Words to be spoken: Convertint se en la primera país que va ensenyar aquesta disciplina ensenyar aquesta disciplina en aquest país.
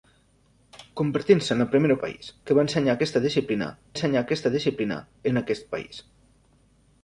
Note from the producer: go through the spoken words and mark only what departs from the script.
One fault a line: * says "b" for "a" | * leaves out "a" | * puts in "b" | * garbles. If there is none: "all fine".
all fine